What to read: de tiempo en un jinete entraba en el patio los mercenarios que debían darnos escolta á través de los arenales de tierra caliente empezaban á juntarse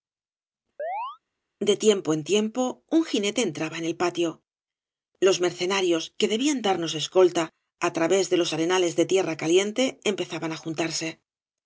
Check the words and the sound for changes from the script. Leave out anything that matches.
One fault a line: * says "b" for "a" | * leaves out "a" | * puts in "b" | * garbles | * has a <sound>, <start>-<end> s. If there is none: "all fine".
* has a chirp, 0.8-1.2 s
* puts in "tiempo"